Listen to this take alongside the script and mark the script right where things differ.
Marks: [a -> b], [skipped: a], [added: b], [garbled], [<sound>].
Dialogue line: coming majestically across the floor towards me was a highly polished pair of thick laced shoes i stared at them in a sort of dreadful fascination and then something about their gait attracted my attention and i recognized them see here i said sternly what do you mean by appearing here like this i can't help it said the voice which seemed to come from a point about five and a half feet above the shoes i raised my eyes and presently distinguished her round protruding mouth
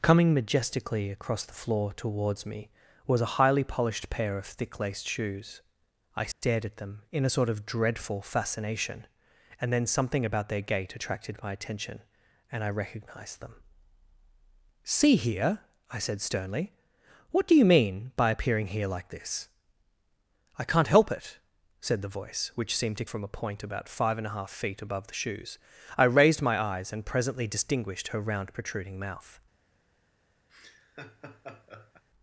coming majestically across the floor towards me was a highly polished pair of thick laced shoes i stared [dropout] at them in a sort of dreadful fascination and then something about their gait attracted my attention and i recognized them see here i said sternly what do you mean by appearing here like this i can't help it said the voice which seemed to [skipped: come] from a point about five and a half feet above the shoes i raised my eyes and presently distinguished her round protruding mouth [laugh]